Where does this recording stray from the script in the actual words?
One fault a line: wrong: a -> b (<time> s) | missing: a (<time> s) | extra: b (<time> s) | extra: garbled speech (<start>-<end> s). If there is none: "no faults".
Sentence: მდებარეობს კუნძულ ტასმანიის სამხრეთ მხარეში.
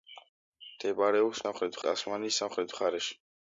wrong: კუნძულ -> სამხრეთ (1.5 s)